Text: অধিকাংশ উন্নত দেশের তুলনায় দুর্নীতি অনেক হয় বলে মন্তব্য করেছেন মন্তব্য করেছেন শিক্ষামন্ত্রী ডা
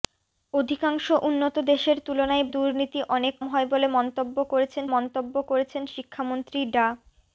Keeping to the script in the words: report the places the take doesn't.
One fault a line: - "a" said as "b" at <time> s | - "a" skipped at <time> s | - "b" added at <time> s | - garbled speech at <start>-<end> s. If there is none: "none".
none